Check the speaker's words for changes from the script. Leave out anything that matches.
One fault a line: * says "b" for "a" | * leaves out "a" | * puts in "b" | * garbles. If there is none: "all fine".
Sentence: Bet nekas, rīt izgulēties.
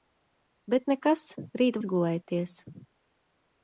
all fine